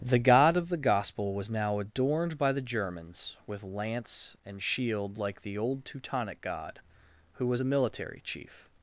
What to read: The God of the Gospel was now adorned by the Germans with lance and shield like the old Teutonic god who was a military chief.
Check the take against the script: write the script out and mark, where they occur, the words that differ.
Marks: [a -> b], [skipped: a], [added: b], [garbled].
The God of the Gospel was now adorned by the Germans with lance and shield like the old Teutonic god who was a military chief.